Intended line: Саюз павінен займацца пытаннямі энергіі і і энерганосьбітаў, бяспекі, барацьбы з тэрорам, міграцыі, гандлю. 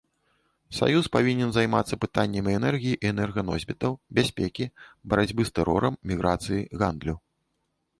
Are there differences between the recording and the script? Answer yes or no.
yes